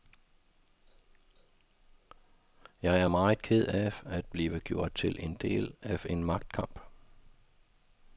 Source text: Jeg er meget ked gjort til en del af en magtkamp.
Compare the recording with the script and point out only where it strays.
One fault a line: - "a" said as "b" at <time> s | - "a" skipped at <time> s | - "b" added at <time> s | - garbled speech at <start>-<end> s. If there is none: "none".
- "af at blive" added at 3.7 s